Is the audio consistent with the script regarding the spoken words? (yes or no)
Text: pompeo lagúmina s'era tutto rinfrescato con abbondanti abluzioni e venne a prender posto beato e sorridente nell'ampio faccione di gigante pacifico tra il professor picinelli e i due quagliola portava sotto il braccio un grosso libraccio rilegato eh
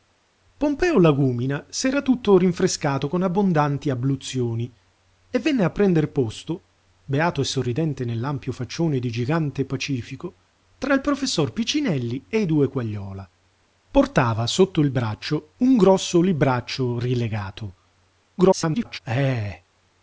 no